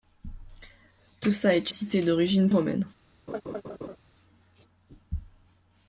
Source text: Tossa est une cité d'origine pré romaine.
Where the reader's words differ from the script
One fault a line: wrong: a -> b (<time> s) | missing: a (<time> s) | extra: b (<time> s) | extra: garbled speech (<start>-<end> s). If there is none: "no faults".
missing: une (1.7 s)
missing: pré (2.5 s)